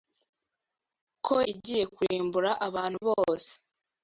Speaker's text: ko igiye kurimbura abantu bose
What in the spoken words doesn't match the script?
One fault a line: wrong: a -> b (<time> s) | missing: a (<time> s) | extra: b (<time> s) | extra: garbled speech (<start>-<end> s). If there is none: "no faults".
no faults